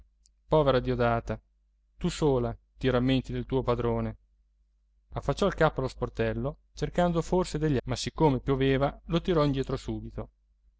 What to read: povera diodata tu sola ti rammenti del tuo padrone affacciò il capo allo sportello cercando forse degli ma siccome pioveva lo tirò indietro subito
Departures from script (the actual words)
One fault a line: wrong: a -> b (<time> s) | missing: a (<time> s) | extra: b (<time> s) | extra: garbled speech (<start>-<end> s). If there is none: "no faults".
no faults